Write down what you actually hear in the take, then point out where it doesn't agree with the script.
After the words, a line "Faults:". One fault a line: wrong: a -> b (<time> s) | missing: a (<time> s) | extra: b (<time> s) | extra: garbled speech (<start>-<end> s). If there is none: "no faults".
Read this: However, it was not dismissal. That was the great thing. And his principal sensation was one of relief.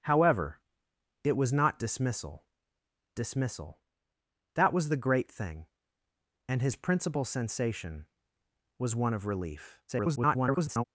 However, it was not dismissal dismissal. That was the great thing. And his principal sensation was one of relief. [garbled]
Faults:
extra: dismissal (3.2 s)
extra: garbled speech (9.9-10.8 s)